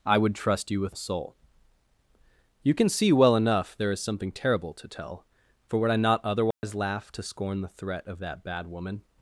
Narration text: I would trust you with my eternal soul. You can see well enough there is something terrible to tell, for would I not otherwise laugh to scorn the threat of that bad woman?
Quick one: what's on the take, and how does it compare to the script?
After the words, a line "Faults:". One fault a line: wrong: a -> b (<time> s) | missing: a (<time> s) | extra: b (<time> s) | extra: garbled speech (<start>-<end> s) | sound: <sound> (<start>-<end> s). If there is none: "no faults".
I would trust you with soul. You can see well enough there is something terrible to tell, for would I not otherwise laugh to scorn the threat of that bad woman?
Faults:
missing: my eternal (1.0 s)
sound: dropout (6.5-6.6 s)